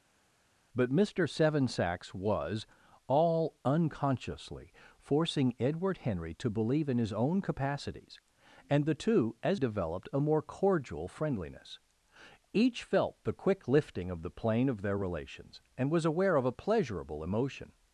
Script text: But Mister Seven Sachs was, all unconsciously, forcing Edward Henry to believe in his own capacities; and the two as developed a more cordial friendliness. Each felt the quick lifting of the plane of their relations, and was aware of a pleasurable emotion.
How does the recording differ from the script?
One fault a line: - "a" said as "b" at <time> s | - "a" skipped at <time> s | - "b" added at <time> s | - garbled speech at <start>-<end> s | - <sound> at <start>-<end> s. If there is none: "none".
none